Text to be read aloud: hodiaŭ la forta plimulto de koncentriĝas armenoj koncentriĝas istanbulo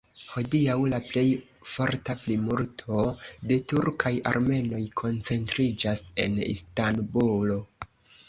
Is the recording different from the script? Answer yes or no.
yes